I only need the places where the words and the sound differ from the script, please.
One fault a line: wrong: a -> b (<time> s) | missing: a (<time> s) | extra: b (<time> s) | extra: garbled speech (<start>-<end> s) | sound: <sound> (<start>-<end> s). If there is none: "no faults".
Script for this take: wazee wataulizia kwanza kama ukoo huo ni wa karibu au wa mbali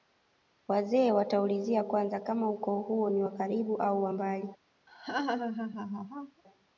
sound: laugh (4.9-6.4 s)